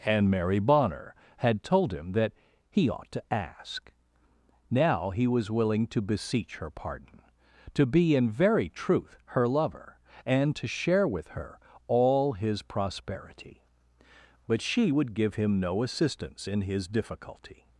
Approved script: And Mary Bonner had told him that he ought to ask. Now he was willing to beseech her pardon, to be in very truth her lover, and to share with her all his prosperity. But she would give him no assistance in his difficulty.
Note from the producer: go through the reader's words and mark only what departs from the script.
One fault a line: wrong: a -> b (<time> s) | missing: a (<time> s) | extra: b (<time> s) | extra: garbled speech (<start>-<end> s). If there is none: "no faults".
no faults